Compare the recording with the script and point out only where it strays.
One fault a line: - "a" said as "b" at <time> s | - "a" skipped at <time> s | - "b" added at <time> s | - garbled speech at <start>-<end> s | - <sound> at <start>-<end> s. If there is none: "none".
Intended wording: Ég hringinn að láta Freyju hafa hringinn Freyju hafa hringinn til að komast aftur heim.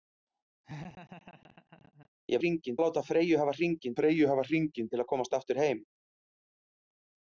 - laugh at 0.6-2.1 s